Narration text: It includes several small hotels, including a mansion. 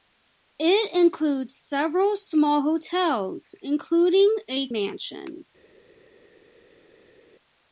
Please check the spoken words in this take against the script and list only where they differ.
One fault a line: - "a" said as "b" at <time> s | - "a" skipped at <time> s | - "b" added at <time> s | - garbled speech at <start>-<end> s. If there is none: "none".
none